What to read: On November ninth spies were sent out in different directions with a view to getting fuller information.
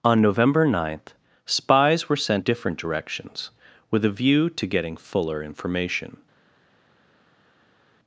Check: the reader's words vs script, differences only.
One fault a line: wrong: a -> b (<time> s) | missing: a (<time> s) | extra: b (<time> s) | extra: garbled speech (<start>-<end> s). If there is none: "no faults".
missing: out in (2.4 s)